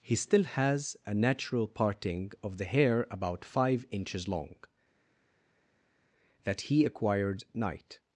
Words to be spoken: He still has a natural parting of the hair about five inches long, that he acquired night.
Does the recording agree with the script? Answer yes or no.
yes